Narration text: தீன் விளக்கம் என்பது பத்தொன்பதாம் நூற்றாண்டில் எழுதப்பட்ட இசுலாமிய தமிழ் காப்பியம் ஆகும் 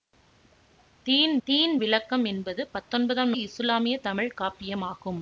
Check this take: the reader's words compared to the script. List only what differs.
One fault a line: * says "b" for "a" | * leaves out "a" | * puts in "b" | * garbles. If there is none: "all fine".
* puts in "தீன்"
* leaves out "நூற்றாண்டில் எழுதப்பட்ட"